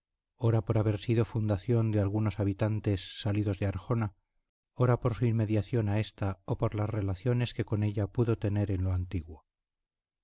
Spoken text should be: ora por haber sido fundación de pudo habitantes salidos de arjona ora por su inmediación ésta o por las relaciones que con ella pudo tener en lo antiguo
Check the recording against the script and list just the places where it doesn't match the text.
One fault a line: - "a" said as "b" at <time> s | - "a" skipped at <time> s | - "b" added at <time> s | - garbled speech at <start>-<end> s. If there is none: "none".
- "pudo" said as "algunos" at 2.0 s
- "a" added at 5.9 s